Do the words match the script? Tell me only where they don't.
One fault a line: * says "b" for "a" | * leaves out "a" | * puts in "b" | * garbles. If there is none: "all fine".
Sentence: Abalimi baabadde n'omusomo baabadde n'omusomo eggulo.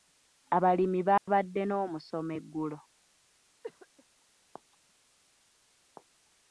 * leaves out "baabadde n'omusomo"